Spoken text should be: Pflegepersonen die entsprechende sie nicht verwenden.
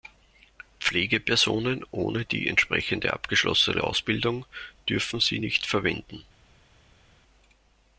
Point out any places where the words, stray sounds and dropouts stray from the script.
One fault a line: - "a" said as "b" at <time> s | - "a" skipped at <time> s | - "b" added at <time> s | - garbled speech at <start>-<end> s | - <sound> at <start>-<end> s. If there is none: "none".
- "ohne" added at 1.9 s
- "abgeschlossene Ausbildung dürfen" added at 3.1 s